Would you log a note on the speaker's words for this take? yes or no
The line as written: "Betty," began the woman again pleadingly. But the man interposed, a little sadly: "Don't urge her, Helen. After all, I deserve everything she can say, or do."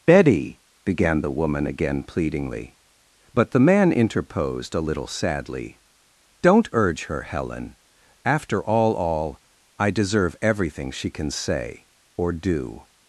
yes